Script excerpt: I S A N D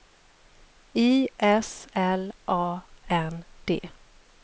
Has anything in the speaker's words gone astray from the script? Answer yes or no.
yes